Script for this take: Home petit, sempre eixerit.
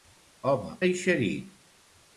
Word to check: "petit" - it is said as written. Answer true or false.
false